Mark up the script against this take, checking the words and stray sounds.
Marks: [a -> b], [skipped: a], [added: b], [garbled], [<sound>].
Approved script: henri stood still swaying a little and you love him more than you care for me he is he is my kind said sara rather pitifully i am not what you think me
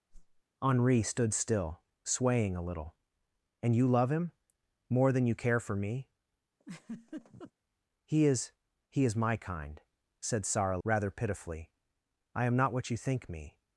[whoosh] henri stood still swaying a little and you love him more than you care for me [laugh] he is he is my kind said sara rather pitifully i am not what you think me